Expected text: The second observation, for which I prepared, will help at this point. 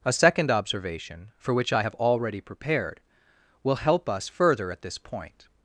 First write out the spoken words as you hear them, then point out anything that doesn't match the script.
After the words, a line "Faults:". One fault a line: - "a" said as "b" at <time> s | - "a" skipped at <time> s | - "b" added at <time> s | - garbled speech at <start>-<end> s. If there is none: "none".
A second observation, for which I have already prepared, will help us further at this point.
Faults:
- "The" said as "A" at 0.0 s
- "have already" added at 1.8 s
- "us further" added at 4.1 s